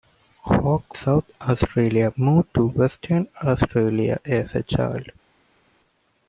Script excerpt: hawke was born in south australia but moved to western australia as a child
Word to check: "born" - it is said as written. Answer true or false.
false